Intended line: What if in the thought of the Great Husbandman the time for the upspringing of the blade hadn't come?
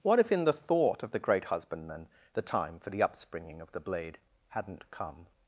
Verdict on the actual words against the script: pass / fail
pass